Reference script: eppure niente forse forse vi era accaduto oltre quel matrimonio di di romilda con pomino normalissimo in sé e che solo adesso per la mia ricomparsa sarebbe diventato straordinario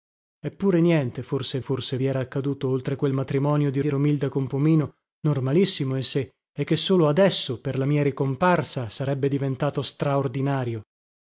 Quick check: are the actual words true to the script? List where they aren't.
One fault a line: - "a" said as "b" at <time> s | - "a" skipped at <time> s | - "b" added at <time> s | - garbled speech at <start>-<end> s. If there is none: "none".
none